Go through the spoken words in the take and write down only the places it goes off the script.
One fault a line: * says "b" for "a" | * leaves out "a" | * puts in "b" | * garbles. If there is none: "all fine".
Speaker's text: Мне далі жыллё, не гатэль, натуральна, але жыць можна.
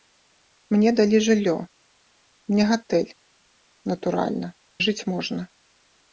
* leaves out "але"